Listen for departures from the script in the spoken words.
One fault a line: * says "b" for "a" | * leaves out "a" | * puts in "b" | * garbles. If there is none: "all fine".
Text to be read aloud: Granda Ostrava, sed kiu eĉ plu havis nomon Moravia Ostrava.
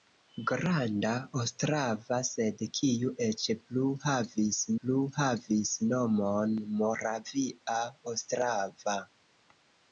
* puts in "plu havis"